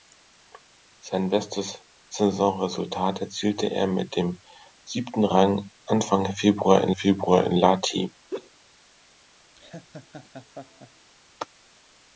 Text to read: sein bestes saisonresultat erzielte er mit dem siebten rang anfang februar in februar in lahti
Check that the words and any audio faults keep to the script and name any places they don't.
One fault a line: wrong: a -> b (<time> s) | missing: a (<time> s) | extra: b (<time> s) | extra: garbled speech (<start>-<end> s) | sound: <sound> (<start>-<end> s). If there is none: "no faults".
sound: laugh (8.3-8.5 s)
sound: laugh (9.6-11.1 s)